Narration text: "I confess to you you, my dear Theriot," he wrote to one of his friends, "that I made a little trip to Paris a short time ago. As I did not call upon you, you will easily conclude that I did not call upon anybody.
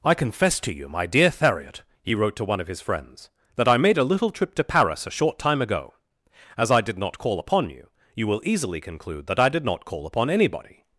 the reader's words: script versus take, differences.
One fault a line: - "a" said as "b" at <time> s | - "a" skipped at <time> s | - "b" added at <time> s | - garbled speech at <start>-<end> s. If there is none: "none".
- "you" skipped at 0.9 s